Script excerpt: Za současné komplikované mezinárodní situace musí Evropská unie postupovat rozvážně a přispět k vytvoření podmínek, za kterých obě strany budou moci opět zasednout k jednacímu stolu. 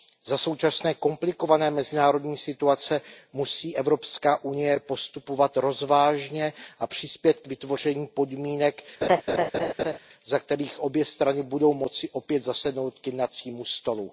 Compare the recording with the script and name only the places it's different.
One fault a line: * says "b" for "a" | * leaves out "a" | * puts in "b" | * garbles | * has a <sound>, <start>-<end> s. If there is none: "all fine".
* has a laugh, 9.0-10.0 s